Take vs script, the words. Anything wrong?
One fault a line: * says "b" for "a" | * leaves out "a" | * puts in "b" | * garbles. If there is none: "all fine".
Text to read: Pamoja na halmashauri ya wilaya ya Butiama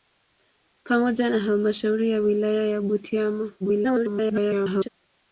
* garbles